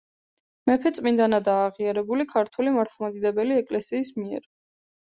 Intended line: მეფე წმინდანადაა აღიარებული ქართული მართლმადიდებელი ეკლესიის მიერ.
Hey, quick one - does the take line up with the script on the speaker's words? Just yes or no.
yes